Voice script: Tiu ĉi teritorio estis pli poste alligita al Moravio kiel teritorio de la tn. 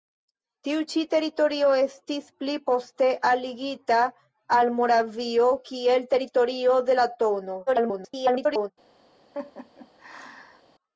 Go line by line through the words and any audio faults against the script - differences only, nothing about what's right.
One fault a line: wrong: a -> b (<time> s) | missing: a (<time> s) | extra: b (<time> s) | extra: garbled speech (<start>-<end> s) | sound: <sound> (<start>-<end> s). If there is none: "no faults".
extra: garbled speech (7.7-8.7 s)
sound: laugh (9.3-10.6 s)